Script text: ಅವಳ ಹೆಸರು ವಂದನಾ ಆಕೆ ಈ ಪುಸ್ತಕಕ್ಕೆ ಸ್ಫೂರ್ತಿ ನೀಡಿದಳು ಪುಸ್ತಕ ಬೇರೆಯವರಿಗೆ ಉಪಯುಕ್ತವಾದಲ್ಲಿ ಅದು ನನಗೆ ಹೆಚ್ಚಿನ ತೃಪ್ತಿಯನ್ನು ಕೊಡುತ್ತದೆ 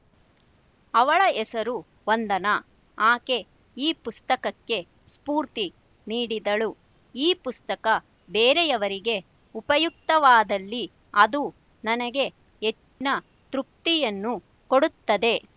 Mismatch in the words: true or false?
true